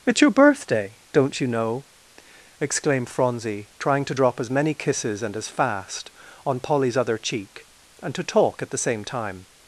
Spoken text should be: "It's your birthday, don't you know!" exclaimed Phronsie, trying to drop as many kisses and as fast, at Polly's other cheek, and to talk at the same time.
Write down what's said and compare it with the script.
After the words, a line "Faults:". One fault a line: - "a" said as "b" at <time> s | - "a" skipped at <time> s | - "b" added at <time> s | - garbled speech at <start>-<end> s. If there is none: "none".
"It's your birthday, don't you know!" exclaimed Phronsie, trying to drop as many kisses and as fast, on Polly's other cheek, and to talk at the same time.
Faults:
- "at" said as "on" at 6.5 s